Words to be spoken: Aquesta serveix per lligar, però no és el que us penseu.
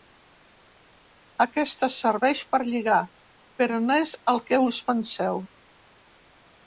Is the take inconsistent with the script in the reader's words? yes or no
no